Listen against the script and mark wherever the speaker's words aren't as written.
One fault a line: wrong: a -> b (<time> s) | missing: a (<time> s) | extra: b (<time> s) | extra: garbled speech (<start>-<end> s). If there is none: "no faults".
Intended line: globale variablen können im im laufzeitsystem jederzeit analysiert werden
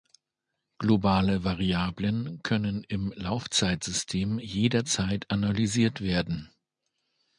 missing: im (3.1 s)